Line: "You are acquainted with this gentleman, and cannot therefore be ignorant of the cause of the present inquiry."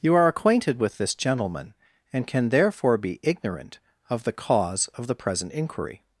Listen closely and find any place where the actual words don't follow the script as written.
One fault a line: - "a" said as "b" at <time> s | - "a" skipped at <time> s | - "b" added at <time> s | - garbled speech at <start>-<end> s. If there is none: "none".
- "cannot" said as "can" at 2.3 s